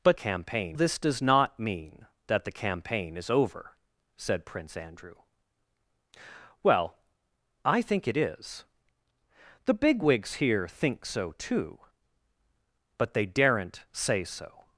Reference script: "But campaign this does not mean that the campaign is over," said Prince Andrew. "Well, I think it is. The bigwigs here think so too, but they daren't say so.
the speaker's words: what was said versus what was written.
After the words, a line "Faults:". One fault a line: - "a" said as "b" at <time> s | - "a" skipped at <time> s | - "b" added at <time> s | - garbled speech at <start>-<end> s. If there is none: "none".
"But campaign this does not mean that the campaign is over," said Prince Andrew. "Well, I think it is. The bigwigs here think so too, but they daren't say so.
Faults:
none